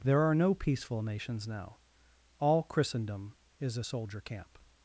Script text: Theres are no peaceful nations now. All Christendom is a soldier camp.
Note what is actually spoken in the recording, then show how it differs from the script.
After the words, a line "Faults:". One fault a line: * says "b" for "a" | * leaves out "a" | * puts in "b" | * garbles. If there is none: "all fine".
There are no peaceful nations now. All Christendom is a soldier camp.
Faults:
* says "There" for "Theres"